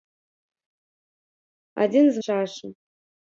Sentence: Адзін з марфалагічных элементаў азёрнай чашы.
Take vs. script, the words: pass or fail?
fail